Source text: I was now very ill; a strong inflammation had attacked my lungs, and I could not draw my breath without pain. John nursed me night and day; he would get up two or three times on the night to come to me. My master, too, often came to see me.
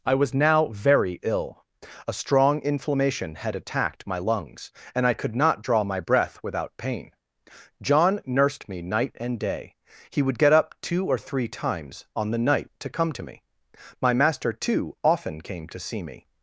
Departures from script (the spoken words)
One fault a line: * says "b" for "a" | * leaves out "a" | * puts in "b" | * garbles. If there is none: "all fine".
all fine